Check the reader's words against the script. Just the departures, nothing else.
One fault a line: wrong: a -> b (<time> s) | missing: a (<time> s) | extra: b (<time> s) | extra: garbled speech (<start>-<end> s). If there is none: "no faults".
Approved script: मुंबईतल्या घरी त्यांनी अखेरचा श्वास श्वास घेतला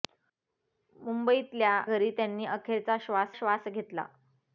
no faults